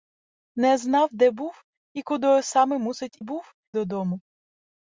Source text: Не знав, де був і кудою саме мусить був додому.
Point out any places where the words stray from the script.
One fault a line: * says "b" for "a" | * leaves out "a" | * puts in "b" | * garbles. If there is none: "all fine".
all fine